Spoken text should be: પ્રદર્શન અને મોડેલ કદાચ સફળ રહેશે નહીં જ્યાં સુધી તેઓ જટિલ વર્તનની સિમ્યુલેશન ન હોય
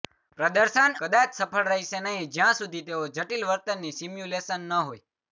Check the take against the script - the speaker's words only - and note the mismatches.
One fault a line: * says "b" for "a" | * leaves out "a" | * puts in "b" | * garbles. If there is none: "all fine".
* leaves out "અને મોડેલ"